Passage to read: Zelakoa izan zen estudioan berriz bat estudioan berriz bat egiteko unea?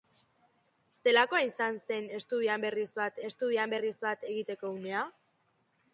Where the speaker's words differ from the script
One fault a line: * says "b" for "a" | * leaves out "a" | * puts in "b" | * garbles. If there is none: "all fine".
all fine